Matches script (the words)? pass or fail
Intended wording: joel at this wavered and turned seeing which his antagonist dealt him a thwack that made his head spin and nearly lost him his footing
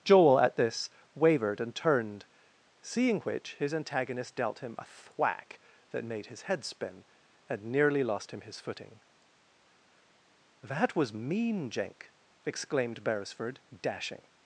fail